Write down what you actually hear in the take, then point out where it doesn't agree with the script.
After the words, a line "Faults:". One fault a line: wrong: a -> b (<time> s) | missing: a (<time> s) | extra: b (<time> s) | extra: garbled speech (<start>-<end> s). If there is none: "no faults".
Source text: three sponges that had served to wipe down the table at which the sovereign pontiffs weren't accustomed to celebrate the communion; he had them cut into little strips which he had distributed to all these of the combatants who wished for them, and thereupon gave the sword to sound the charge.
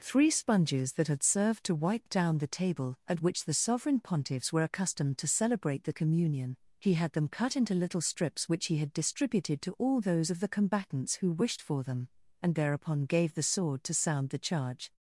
three sponges that had served to wipe down the table at which the sovereign pontiffs were accustomed to celebrate the communion; he had them cut into little strips which he had distributed to all those of the combatants who wished for them, and thereupon gave the sword to sound the charge.
Faults:
wrong: weren't -> were (4.5 s)
wrong: these -> those (10.0 s)